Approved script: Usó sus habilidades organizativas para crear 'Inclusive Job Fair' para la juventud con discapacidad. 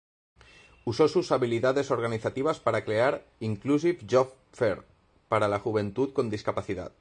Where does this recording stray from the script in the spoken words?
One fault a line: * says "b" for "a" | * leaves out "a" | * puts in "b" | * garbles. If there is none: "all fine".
all fine